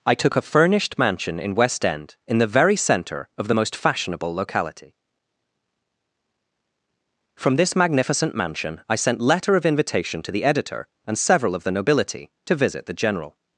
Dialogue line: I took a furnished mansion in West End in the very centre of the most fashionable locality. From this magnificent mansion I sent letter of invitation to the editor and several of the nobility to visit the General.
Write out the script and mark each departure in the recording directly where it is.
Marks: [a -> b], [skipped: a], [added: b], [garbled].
I took a furnished mansion in West End in the very centre of the most fashionable locality. From this magnificent mansion I sent letter of invitation to the editor and several of the nobility to visit the General.